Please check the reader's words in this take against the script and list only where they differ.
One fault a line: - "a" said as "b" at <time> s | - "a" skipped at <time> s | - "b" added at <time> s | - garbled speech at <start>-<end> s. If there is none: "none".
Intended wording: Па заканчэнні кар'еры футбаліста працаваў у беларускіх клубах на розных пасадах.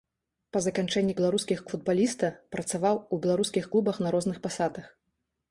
- "кар'еры" said as "беларускіх" at 1.2 s